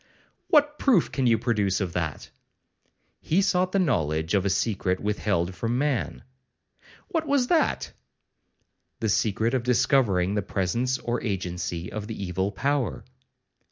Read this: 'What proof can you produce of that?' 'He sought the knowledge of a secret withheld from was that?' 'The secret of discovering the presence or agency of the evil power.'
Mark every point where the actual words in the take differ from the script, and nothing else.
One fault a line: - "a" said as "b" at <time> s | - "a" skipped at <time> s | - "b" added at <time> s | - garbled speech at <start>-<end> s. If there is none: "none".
- "man What" added at 5.8 s